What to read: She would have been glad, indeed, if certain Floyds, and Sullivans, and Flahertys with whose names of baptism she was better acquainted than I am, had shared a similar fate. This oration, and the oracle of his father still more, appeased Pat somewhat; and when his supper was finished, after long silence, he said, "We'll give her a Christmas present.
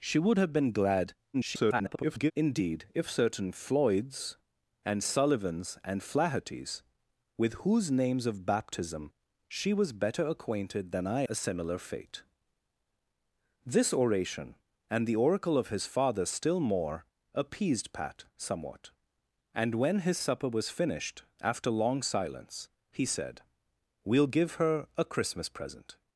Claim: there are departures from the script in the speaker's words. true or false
true